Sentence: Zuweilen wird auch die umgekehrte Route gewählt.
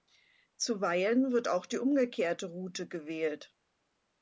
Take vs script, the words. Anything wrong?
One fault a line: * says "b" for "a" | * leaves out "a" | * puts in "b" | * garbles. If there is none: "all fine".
all fine